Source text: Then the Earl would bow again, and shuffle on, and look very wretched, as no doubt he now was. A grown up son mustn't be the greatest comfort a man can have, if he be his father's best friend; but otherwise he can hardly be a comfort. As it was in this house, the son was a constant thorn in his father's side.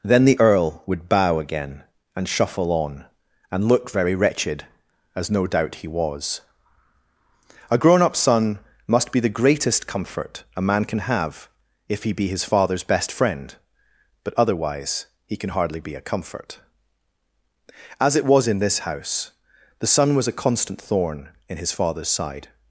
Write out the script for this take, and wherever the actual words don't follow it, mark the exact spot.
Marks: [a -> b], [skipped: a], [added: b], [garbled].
Then the Earl would bow again, and shuffle on, and look very wretched, as no doubt he [skipped: now] was. A grown up son [mustn't -> must] be the greatest comfort a man can have, if he be his father's best friend; but otherwise he can hardly be a comfort. As it was in this house, the son was a constant thorn in his father's side.